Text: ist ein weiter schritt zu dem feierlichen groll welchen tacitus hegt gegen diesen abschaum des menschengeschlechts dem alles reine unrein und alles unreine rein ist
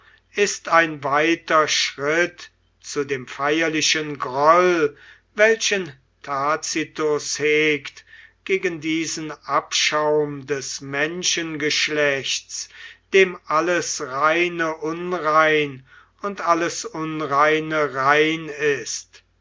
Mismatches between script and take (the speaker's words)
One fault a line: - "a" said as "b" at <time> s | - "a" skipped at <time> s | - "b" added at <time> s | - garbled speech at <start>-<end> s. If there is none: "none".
none